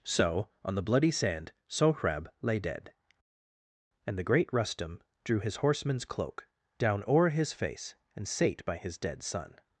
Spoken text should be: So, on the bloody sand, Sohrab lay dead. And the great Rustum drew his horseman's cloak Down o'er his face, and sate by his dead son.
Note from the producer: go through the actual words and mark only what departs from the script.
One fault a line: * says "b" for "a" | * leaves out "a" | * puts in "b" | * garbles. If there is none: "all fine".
all fine